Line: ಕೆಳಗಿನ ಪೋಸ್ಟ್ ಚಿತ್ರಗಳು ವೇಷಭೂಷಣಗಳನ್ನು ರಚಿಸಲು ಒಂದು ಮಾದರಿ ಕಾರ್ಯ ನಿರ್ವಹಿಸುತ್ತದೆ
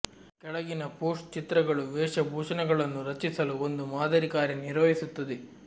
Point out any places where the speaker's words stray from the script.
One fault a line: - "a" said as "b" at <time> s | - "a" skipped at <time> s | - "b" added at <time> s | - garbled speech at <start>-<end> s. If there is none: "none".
none